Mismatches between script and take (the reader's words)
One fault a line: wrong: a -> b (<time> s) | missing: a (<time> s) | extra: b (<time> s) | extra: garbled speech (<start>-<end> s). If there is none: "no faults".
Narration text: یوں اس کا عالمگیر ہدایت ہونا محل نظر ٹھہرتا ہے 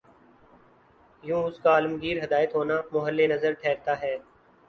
no faults